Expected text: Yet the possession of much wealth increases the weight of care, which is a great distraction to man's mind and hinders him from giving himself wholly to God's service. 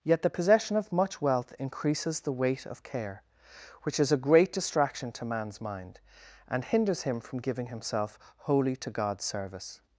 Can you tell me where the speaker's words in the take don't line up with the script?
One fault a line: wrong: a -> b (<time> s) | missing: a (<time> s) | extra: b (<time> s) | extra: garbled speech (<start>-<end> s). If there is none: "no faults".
no faults